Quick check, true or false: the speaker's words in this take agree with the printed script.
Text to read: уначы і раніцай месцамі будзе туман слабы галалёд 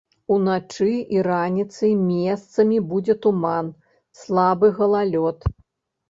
true